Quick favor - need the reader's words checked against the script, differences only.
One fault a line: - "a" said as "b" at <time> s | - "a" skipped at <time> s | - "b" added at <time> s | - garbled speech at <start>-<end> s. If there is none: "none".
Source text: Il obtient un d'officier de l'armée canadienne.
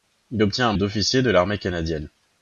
none